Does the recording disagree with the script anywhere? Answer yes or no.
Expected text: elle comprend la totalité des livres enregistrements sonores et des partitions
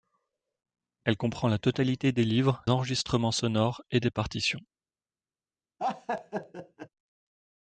no